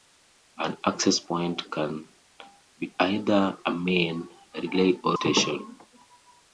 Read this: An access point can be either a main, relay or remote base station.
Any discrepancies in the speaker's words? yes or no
yes